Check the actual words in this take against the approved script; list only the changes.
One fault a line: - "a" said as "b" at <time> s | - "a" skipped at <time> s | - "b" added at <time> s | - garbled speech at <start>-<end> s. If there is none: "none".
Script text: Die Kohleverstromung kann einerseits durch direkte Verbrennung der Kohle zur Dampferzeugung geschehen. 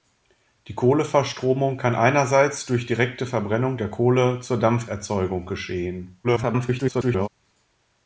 - garbled speech at 6.2-7.3 s